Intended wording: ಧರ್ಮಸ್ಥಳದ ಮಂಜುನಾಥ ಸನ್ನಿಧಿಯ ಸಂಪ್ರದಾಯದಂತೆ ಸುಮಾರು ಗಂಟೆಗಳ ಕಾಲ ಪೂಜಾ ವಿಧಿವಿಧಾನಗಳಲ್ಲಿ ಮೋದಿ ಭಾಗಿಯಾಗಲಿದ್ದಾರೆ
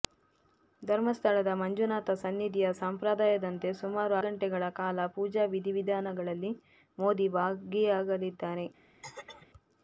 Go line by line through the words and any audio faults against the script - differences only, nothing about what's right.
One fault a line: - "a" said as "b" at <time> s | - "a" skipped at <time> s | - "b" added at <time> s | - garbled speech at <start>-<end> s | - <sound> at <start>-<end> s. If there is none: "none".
- throat clearing at 9.0-9.5 s